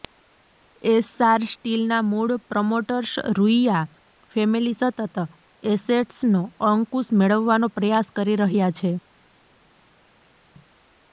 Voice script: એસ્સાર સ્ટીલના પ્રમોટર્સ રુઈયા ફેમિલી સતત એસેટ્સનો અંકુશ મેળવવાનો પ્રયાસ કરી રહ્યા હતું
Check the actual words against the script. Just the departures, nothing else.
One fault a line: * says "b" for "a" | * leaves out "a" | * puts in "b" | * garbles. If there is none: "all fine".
* puts in "મૂળ"
* says "છે" for "હતું"